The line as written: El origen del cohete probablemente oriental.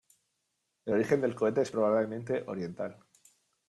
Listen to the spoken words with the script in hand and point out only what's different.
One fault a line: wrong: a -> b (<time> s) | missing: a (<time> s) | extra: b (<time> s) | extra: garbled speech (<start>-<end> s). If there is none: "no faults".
extra: es (1.6 s)